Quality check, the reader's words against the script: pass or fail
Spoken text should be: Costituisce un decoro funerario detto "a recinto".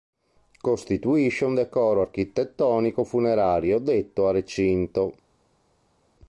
fail